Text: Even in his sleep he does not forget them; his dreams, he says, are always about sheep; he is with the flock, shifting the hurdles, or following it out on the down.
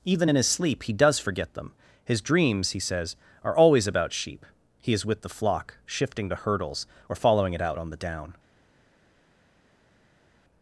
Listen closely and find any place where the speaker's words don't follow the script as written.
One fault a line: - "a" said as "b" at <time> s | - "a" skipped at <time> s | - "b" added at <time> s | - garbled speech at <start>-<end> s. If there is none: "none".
- "not" skipped at 1.2 s